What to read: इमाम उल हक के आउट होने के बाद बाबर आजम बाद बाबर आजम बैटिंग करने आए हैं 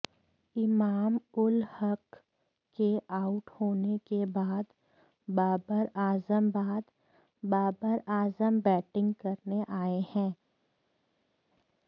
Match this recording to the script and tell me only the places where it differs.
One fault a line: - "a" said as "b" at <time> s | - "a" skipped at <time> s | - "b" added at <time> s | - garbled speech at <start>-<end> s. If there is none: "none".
none